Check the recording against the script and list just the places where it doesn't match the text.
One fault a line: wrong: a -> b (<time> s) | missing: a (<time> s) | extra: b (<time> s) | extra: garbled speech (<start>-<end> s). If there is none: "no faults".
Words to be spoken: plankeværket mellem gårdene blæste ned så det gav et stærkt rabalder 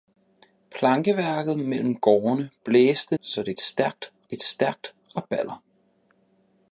missing: ned (3.2 s)
wrong: gav -> stærkt (3.6 s)